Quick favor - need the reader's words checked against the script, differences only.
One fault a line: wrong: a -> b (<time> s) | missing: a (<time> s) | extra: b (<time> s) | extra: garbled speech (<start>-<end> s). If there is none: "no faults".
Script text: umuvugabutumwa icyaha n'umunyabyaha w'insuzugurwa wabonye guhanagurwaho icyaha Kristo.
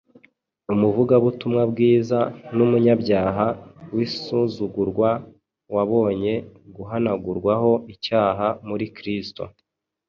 wrong: icyaha -> bwiza (1.7 s)
extra: muri (8.7 s)